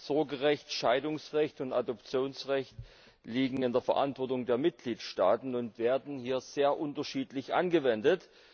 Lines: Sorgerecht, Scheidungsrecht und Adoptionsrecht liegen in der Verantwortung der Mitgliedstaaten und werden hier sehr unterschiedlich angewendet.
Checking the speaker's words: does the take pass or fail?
pass